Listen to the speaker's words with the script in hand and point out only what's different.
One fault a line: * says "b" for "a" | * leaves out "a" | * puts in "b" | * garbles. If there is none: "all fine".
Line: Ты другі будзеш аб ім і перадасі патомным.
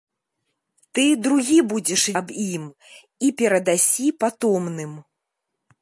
all fine